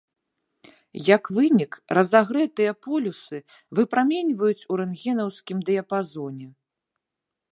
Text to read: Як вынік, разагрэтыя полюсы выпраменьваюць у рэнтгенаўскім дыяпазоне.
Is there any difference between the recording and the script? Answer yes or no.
no